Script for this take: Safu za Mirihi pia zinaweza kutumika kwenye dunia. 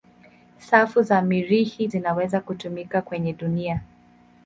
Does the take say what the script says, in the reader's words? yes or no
no